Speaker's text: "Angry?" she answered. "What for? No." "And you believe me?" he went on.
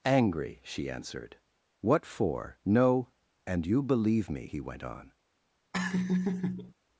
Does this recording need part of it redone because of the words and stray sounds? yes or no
yes